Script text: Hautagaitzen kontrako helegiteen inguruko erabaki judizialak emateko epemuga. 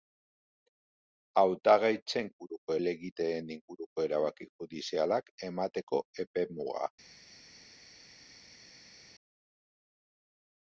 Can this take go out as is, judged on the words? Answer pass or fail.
fail